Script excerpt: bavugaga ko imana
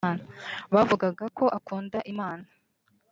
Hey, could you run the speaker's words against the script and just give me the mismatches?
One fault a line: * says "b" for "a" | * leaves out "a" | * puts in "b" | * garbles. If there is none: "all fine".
* puts in "akunda"